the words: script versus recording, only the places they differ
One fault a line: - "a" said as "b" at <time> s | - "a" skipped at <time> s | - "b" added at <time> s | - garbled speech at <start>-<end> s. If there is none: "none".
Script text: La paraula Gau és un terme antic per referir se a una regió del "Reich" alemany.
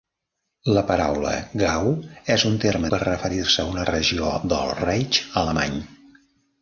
- "antic" skipped at 2.9 s